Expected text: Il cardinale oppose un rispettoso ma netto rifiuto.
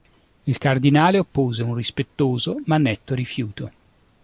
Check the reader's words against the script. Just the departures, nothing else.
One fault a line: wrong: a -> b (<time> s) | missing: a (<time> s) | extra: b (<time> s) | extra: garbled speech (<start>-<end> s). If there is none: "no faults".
no faults